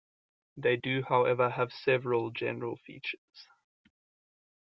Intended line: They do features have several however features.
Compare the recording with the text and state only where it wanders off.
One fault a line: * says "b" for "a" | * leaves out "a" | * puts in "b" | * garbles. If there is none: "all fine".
* says "however" for "features"
* says "general" for "however"